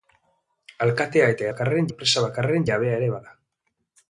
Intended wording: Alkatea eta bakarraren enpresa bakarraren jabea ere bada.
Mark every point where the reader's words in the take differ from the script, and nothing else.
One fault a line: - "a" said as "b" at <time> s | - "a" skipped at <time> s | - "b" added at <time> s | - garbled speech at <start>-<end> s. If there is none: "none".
none